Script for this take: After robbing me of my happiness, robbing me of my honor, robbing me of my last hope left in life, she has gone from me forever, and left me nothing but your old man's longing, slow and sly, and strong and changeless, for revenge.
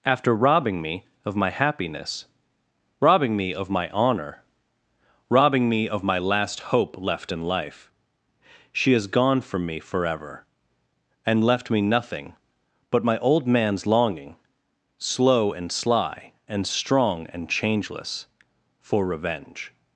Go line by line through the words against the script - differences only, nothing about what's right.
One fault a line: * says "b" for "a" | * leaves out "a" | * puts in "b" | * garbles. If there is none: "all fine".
* says "my" for "your"